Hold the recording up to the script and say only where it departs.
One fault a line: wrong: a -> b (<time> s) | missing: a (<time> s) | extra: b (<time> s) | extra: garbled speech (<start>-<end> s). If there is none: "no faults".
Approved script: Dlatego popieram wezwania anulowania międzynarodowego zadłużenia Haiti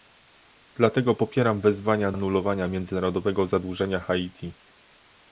no faults